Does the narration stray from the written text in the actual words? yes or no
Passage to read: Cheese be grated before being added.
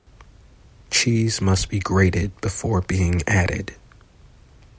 yes